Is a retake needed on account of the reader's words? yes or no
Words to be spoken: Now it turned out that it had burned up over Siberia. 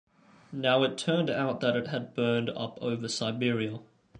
no